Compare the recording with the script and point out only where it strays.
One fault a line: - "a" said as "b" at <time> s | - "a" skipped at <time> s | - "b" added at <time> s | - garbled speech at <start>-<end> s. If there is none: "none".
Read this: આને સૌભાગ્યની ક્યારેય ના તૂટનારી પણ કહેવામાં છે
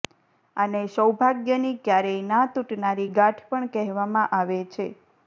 - "ગાંઠ" added at 3.1 s
- "આવે" added at 4.4 s